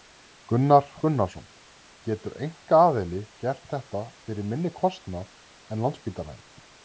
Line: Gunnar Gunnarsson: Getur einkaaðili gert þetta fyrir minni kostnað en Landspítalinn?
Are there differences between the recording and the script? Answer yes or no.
no